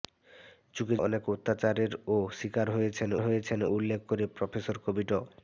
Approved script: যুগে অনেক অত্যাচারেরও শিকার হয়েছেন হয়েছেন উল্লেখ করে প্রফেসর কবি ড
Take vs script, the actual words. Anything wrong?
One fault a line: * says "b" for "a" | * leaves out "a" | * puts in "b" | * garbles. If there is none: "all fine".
all fine